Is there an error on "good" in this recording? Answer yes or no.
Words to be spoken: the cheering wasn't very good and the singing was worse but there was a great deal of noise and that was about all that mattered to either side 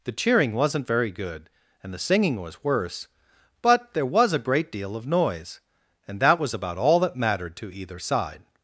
no